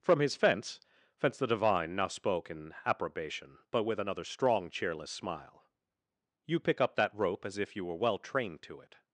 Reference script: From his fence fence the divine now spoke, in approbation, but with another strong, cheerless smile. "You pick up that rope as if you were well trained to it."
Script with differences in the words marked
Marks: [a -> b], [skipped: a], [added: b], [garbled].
From his fence fence the divine now spoke, in approbation, but with another strong, cheerless smile. "You pick up that rope as if you were well trained to it."